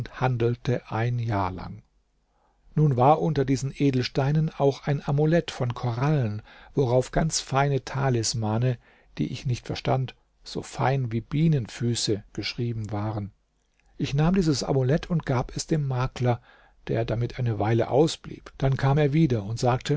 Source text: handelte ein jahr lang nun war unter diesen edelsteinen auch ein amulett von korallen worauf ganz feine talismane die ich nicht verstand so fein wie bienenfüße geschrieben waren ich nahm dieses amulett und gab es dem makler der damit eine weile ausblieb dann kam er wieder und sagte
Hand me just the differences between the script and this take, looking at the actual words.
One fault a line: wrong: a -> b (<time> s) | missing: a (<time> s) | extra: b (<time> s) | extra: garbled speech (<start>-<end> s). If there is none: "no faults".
no faults